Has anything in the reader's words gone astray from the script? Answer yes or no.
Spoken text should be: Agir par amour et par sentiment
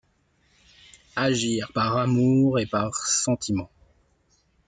no